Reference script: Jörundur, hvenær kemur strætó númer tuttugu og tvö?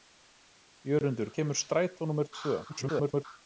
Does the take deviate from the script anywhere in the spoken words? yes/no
yes